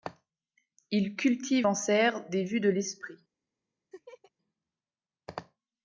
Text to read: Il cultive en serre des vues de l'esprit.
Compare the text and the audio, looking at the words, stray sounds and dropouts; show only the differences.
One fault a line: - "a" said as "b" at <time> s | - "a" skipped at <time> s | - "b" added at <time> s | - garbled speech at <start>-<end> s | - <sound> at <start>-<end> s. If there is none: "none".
- laugh at 3.9-4.3 s